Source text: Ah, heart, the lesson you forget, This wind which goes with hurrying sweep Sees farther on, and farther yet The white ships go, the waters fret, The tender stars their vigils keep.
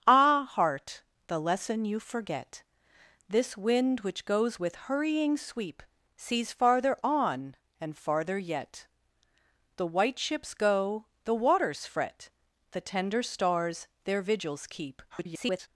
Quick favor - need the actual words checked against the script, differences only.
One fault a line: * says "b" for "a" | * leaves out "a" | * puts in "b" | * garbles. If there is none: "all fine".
* garbles